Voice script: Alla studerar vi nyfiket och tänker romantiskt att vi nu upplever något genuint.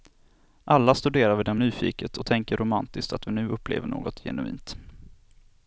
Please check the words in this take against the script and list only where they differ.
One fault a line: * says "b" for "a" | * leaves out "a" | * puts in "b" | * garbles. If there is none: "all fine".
* puts in "dem"